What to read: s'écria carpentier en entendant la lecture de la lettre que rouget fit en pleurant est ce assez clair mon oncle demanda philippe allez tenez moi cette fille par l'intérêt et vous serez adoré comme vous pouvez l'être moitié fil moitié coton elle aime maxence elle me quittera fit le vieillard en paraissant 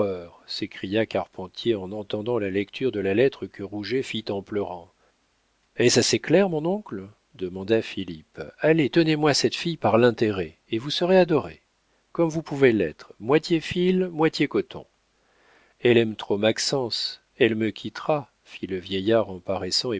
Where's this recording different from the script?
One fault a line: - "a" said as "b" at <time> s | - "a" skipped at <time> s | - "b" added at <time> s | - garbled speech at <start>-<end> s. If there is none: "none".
- "trop" added at 16.1 s